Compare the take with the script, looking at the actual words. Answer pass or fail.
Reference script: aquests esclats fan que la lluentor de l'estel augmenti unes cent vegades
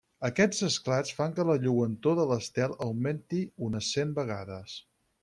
pass